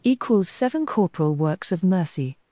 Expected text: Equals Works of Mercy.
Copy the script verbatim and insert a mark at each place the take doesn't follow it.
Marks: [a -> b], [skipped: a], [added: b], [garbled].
Equals [added: Seven Corporal] Works of Mercy.